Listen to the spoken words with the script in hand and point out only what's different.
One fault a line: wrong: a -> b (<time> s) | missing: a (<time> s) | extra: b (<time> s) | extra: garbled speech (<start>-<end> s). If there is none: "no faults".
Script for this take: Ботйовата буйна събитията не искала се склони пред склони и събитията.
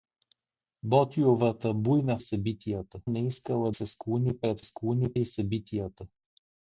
no faults